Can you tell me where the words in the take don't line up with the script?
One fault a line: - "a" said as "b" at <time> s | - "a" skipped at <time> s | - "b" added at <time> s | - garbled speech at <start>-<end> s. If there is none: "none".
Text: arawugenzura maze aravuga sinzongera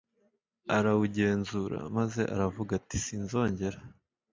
- "ati" added at 2.8 s